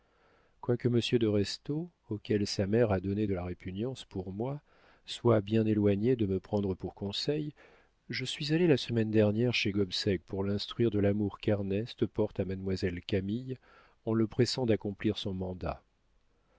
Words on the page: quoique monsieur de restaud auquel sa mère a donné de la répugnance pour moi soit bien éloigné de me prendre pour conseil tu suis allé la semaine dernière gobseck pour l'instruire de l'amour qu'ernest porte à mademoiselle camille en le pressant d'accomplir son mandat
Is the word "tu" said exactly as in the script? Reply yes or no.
no